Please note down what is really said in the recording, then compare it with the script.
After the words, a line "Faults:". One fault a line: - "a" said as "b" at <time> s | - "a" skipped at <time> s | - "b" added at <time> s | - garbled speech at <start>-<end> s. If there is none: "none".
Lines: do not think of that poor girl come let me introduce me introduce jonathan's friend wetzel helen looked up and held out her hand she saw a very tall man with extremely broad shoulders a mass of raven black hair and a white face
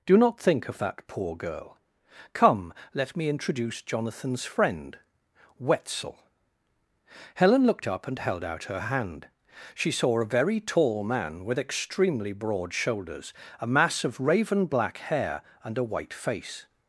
do not think of that poor girl come let me introduce jonathan's friend wetzel helen looked up and held out her hand she saw a very tall man with extremely broad shoulders a mass of raven black hair and a white face
Faults:
- "me introduce" skipped at 3.8 s